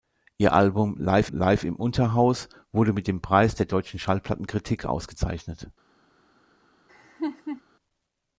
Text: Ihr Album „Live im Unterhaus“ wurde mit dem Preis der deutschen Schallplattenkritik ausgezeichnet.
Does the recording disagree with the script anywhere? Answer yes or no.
yes